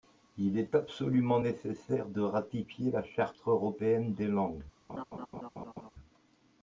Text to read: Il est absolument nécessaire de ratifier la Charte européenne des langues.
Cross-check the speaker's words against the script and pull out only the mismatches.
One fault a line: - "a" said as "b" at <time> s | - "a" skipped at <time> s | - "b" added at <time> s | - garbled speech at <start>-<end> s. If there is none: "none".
none